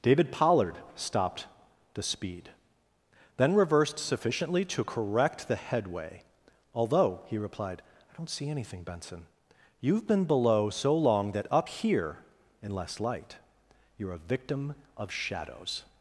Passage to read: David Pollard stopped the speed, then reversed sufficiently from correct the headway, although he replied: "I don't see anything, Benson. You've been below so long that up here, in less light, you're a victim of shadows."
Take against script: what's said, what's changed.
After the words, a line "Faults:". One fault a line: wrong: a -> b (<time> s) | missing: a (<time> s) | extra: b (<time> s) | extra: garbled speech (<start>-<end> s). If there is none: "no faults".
David Pollard stopped the speed, then reversed sufficiently to correct the headway, although he replied: "I don't see anything, Benson. You've been below so long that up here, in less light, you're a victim of shadows."
Faults:
wrong: from -> to (4.7 s)